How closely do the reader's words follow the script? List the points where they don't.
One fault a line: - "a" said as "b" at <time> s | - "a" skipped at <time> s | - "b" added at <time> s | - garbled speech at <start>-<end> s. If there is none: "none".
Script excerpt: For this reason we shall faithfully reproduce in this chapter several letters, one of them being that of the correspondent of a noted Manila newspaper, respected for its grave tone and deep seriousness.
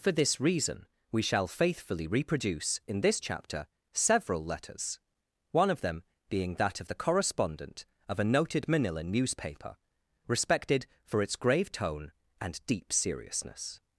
none